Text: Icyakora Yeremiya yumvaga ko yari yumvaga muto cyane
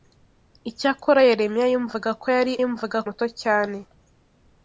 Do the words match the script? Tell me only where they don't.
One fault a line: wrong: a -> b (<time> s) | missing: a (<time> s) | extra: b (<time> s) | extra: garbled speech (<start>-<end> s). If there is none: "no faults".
no faults